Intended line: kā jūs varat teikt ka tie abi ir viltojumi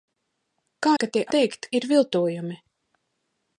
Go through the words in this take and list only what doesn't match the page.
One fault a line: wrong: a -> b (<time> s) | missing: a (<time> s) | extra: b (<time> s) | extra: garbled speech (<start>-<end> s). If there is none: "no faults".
missing: jūs varat teikt (0.9 s)
wrong: abi -> teikt (1.4 s)